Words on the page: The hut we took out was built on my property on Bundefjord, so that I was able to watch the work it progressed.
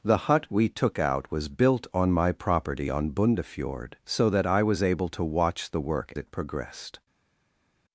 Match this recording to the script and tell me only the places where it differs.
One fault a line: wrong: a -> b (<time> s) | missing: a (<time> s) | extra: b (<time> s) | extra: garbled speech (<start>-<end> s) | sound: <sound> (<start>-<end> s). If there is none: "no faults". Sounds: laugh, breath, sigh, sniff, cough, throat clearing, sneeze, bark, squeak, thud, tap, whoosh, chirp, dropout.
no faults